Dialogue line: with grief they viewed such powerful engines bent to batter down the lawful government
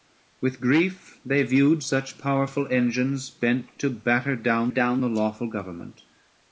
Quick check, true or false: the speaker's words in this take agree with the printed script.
false